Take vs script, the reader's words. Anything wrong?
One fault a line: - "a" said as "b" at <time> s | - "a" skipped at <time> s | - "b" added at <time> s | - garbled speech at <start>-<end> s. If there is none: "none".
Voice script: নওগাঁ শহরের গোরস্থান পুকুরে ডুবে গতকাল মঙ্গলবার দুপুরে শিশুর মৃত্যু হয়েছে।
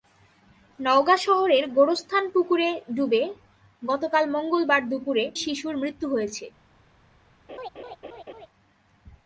none